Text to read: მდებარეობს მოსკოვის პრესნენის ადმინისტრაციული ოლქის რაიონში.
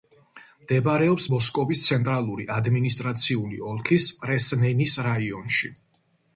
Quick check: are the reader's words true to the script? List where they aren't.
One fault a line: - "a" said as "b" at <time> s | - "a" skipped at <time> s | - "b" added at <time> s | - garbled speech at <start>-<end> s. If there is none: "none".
- "პრესნენის" said as "ცენტრალური" at 1.9 s
- "პრესნენის" added at 4.2 s